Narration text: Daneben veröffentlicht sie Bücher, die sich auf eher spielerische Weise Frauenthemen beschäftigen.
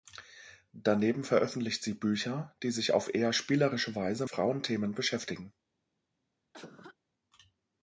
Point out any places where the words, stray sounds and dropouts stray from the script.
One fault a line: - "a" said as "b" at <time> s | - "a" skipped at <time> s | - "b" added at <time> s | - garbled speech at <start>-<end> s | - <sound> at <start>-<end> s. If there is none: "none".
- cough at 6.5-7.0 s